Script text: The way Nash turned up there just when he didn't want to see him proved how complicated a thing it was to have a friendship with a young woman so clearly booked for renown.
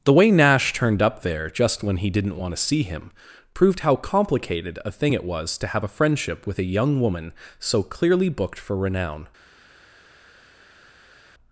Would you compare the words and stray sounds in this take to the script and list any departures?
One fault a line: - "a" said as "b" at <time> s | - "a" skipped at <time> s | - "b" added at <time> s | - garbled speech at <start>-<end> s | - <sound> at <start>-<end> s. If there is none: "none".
none